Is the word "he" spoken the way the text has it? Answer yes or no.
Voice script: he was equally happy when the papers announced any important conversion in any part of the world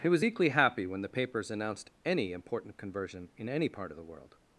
yes